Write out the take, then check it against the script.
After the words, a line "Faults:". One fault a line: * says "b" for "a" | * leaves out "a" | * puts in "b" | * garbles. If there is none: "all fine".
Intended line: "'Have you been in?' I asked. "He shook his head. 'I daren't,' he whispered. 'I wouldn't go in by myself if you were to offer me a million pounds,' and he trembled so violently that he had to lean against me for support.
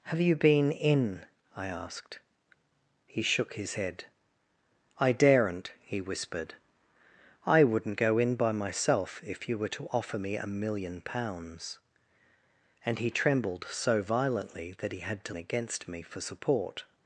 "'Have you been in?' I asked. "He shook his head. 'I daren't,' he whispered. 'I wouldn't go in by myself if you were to offer me a million pounds,' and he trembled so violently that he had to against me for support.
Faults:
* leaves out "lean"